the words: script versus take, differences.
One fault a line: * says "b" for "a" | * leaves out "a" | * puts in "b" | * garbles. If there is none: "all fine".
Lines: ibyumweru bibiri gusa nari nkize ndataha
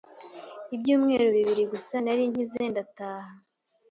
all fine